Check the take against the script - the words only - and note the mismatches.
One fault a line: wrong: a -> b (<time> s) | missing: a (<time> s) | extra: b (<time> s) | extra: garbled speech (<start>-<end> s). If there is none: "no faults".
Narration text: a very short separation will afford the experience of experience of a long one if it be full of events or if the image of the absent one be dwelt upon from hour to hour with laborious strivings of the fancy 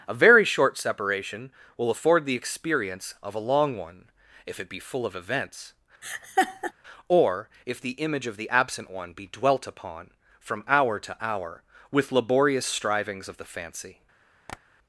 missing: experience of (3.4 s)